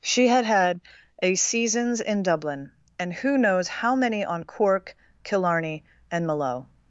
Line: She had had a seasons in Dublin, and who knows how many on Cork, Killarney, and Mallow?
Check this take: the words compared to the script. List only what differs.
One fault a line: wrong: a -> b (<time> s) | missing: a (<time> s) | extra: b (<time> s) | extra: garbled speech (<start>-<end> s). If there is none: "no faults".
no faults